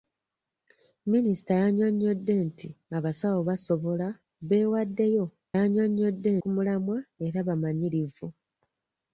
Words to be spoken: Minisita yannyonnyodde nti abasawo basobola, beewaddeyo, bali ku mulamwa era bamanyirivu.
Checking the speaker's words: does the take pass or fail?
fail